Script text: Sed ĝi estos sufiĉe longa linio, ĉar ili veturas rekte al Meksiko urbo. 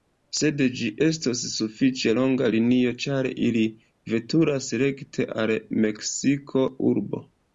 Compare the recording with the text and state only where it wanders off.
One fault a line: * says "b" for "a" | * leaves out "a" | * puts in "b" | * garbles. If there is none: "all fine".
all fine